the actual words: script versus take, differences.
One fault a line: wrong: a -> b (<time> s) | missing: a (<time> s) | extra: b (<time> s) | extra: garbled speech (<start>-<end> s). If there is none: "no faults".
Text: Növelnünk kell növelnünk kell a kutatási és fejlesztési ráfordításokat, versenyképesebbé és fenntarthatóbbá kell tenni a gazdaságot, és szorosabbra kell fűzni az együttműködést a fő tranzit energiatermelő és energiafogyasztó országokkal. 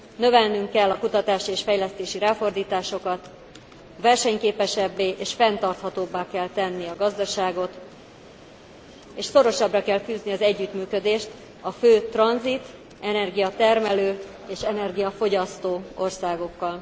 missing: növelnünk kell (0.9 s)